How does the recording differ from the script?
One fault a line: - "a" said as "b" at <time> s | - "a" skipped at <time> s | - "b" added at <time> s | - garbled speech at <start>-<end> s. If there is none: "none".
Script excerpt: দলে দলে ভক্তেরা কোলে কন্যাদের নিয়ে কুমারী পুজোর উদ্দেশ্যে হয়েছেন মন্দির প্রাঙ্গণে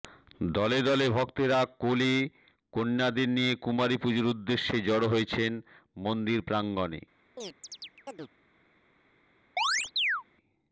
- "জড়ো" added at 4.8 s